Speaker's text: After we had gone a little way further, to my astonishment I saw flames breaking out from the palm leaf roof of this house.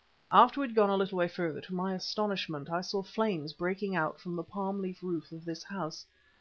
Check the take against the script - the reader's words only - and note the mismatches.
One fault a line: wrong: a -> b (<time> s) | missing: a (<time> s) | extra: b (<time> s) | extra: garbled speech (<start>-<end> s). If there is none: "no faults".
no faults